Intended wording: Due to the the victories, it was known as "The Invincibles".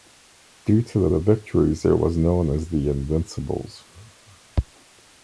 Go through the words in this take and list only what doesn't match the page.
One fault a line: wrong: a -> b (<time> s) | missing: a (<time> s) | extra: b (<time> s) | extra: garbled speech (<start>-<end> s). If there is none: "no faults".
no faults